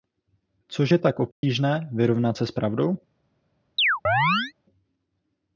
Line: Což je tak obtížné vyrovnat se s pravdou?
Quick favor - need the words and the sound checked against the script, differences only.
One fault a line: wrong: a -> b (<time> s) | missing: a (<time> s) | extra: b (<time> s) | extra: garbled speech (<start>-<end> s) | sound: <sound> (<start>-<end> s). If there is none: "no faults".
sound: dropout (1.3-1.4 s)
sound: chirp (3.8-4.5 s)